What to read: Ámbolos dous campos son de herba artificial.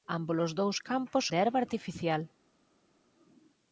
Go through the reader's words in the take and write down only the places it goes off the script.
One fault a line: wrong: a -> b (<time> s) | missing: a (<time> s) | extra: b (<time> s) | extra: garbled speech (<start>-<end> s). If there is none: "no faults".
missing: son (1.3 s)